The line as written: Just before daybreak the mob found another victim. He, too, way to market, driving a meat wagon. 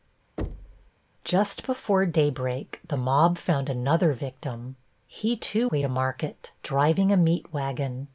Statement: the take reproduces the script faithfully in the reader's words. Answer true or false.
true